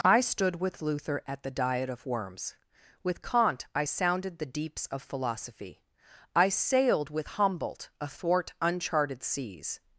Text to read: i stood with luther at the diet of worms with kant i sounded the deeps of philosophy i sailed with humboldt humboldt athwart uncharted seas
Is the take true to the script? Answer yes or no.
no